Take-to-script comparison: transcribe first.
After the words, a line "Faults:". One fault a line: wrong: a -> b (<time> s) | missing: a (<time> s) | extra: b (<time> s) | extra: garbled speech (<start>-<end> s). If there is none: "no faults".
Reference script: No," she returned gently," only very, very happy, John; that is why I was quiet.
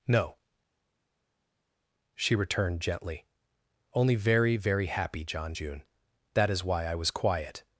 No," she returned gently," only very, very happy, John; june that is why I was quiet.
Faults:
extra: june (5.5 s)